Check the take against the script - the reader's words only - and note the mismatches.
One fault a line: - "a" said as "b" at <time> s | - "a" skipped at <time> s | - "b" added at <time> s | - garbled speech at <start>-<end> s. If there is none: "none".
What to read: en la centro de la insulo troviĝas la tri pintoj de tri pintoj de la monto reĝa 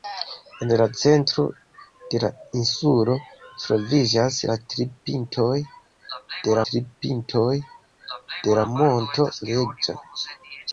none